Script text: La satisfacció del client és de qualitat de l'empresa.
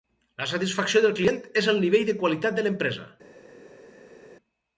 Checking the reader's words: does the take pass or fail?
fail